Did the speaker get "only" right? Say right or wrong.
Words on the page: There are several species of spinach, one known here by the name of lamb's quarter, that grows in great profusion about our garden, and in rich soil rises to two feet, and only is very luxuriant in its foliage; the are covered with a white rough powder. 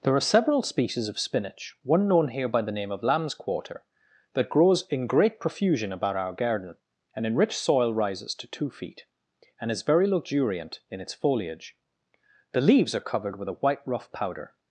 wrong